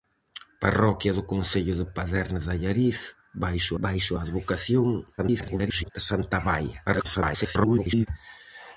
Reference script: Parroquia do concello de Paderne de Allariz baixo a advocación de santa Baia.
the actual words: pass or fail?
fail